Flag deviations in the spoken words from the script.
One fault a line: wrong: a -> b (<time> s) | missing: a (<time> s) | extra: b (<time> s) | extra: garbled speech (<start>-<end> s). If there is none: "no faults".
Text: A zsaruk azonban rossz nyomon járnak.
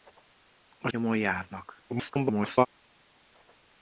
missing: zsaruk azonban rossz (0.9 s)
extra: garbled speech (1.9-2.7 s)